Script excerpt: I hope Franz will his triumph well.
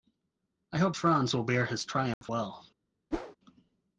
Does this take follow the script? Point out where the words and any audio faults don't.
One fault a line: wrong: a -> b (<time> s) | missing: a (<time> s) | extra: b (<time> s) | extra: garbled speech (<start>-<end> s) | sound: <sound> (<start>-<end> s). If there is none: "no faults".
extra: bear (1.4 s)
sound: dropout (2.1-2.2 s)
sound: whoosh (3.1-3.4 s)